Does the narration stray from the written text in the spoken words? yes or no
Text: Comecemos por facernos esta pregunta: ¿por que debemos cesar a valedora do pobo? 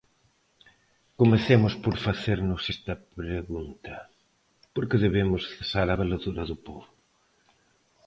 no